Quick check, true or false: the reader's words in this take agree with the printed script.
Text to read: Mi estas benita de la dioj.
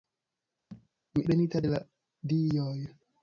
false